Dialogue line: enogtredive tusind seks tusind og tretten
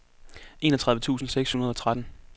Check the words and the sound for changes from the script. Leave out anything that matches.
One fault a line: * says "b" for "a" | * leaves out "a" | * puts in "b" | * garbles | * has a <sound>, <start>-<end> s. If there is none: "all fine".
* says "hundrede" for "tusind"